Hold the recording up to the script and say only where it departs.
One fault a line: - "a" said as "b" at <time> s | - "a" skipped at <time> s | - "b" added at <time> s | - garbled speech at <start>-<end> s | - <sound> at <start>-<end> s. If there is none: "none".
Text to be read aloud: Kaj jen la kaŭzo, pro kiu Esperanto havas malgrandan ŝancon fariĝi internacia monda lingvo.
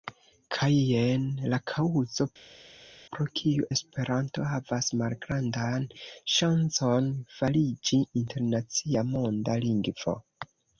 none